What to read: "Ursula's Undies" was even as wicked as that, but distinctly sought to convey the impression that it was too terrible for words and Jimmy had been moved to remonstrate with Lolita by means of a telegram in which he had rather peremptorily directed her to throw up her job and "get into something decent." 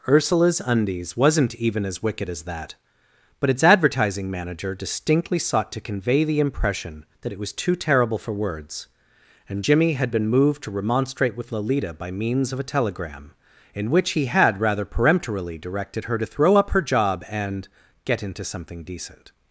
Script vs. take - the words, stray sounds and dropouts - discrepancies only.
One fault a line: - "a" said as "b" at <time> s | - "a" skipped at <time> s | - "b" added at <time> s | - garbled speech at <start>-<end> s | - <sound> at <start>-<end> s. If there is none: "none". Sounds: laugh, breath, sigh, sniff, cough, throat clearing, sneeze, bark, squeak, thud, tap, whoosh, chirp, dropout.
- "was" said as "wasn't" at 1.1 s
- "its advertising manager" added at 3.5 s